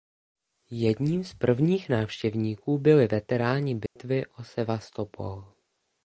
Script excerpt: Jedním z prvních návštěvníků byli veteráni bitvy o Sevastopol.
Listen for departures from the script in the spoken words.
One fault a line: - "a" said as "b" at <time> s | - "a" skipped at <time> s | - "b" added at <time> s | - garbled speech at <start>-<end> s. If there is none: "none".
none